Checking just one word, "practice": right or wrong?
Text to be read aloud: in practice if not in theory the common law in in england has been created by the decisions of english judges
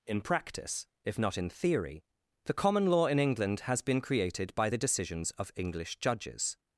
right